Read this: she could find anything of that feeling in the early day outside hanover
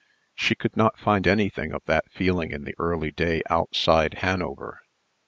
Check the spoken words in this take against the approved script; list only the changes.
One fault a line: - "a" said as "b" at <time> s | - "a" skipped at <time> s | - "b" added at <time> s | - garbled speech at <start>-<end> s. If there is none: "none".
- "not" added at 0.8 s